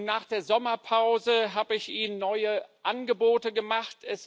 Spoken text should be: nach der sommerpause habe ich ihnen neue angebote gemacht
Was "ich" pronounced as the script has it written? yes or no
yes